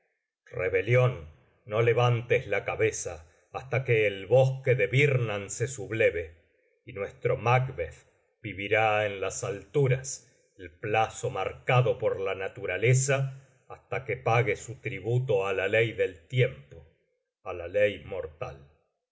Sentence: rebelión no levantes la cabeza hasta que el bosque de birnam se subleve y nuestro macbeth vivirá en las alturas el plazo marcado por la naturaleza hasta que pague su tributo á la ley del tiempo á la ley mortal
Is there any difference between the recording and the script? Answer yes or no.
no